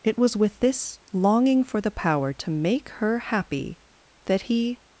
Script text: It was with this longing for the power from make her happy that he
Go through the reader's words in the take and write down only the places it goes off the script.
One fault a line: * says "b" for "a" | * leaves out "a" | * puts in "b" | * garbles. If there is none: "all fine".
* says "to" for "from"